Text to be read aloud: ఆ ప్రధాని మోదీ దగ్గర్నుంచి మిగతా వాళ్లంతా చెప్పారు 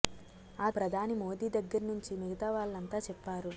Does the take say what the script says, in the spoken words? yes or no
yes